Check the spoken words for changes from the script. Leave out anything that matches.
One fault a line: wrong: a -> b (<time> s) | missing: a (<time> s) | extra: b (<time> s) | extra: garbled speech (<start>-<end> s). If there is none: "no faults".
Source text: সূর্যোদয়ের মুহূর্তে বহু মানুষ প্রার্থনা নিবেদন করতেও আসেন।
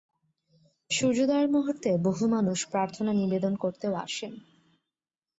no faults